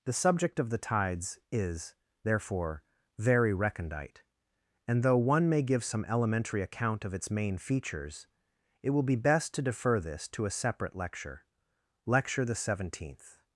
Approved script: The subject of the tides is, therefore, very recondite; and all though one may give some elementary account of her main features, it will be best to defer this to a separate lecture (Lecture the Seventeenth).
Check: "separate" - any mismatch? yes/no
no